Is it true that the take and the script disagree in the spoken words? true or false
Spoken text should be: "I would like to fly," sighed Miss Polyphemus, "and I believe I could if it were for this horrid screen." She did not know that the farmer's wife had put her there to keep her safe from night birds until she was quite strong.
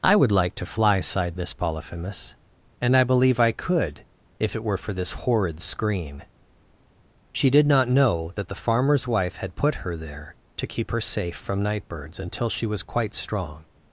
false